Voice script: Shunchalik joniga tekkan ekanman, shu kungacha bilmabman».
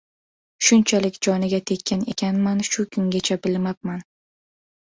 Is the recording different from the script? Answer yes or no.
no